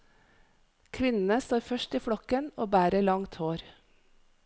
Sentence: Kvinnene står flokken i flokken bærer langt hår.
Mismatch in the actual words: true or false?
true